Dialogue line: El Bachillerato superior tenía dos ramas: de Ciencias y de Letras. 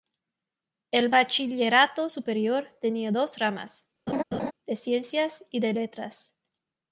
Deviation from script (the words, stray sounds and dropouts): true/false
true